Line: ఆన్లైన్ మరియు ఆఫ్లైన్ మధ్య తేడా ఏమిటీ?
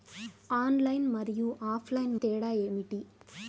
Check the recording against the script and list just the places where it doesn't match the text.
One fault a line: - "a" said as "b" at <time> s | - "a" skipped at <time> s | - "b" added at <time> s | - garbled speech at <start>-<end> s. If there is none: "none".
- "మధ్య" skipped at 2.1 s